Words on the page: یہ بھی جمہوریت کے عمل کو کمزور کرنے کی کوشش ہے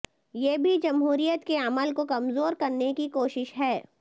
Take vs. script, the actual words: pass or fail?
pass